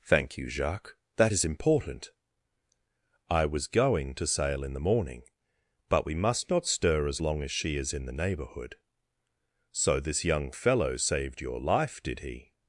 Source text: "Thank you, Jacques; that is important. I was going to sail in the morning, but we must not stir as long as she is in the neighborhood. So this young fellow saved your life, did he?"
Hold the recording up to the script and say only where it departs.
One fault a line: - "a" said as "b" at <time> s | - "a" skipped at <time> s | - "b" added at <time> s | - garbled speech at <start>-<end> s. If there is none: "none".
none